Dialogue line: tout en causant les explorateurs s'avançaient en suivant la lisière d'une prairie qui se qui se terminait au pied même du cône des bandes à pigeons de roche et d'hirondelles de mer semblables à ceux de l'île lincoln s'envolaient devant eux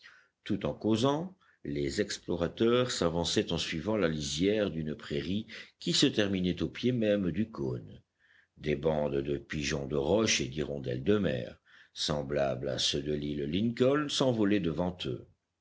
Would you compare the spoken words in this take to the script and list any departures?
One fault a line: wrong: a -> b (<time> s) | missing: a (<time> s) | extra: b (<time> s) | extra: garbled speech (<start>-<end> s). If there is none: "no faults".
missing: qui se (6.1 s)
wrong: à -> de (9.2 s)